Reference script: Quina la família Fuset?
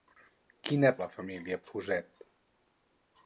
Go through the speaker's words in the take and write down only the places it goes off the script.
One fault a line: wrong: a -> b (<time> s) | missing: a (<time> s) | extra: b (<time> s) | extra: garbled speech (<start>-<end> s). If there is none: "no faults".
no faults